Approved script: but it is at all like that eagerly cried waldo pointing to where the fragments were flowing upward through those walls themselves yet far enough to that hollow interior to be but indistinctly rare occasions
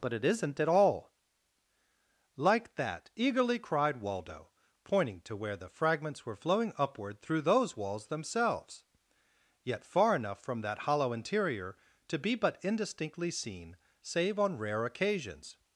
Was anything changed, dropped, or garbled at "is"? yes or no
yes